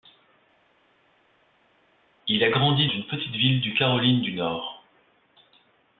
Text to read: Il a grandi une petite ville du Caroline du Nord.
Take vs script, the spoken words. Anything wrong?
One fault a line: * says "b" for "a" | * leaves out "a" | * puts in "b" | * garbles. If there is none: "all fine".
all fine